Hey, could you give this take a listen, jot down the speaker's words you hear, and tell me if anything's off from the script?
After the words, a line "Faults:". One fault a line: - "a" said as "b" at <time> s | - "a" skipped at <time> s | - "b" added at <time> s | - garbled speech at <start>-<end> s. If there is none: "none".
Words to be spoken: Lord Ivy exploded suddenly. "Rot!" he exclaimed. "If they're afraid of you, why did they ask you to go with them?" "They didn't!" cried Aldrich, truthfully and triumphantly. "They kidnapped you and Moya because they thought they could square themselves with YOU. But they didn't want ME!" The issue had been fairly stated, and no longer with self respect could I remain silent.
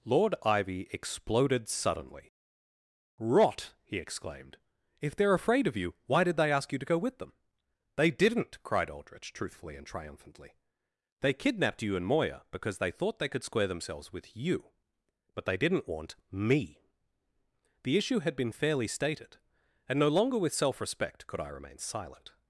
Lord Ivy exploded suddenly. "Rot!" he exclaimed. "If they're afraid of you, why did they ask you to go with them?" "They didn't!" cried Aldrich, truthfully and triumphantly. "They kidnapped you and Moya because they thought they could square themselves with YOU. But they didn't want ME!" The issue had been fairly stated, and no longer with self respect could I remain silent.
Faults:
none